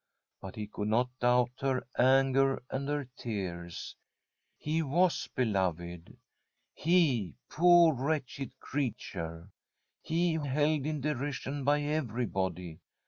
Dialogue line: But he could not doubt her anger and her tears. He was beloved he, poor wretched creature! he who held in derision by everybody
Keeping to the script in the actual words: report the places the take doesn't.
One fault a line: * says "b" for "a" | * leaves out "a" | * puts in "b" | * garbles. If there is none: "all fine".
all fine